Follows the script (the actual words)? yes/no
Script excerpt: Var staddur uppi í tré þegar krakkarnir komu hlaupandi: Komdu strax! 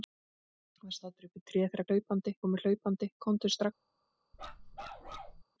no